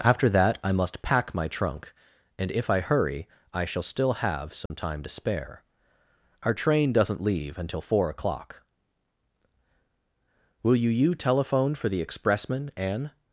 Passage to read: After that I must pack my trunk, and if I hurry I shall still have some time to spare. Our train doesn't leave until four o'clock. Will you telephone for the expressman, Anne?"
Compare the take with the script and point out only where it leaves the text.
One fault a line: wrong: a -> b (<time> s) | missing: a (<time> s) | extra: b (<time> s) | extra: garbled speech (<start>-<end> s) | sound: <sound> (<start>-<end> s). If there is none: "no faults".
sound: dropout (4.7-4.7 s)
extra: you (10.9 s)